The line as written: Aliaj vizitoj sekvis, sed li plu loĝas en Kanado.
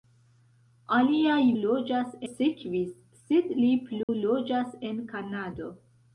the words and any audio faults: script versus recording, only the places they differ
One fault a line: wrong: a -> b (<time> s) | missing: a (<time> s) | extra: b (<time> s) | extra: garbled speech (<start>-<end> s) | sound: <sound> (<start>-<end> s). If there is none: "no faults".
wrong: vizitoj -> loĝas (1.6 s)
sound: dropout (4.0-4.1 s)